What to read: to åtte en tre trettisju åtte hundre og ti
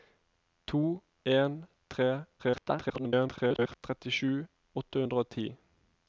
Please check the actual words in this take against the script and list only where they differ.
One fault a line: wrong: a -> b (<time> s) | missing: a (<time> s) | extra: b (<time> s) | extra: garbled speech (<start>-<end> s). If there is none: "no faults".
missing: åtte (1.0 s)
extra: garbled speech (2.4-3.8 s)